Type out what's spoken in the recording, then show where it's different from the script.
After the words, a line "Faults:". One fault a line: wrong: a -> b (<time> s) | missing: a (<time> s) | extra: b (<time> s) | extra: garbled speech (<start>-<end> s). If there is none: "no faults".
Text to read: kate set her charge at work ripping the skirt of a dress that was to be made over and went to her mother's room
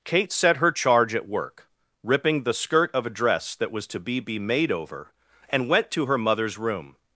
kate set her charge at work ripping the skirt of a dress that was to be be made over and went to her mother's room
Faults:
extra: be (4.2 s)